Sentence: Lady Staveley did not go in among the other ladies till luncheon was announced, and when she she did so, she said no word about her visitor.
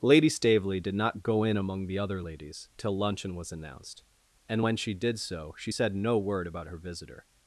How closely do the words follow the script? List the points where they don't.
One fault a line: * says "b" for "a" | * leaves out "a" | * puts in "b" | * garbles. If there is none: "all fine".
* leaves out "she"